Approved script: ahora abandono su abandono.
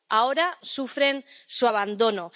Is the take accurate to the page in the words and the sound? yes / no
no